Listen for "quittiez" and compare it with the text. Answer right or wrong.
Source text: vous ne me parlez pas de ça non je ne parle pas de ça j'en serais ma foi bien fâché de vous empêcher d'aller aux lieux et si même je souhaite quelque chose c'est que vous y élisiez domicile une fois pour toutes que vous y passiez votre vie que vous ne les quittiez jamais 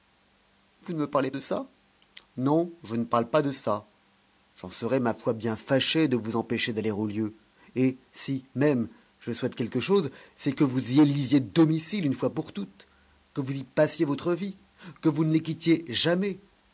right